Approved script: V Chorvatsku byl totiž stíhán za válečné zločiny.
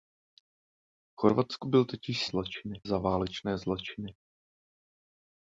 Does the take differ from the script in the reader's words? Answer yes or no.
yes